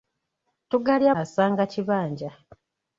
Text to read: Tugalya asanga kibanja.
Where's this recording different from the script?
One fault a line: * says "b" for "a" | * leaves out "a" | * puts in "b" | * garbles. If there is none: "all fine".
all fine